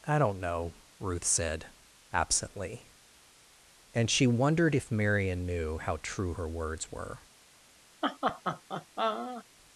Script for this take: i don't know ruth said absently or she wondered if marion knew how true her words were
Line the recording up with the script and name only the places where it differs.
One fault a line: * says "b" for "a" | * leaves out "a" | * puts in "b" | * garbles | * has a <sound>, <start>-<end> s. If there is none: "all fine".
* says "and" for "or"
* has a laugh, 8.0-9.4 s